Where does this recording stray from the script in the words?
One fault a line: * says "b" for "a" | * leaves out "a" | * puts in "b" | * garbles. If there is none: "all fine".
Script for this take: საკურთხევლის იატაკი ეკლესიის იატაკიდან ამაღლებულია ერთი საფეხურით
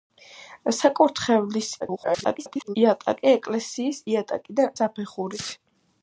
* garbles
* leaves out "ამაღლებულია ერთი"